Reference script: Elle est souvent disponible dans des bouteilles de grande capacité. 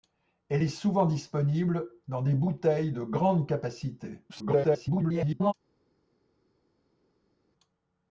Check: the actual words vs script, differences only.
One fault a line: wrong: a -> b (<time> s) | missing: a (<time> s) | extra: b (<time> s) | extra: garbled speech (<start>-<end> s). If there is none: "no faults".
extra: garbled speech (4.3-5.5 s)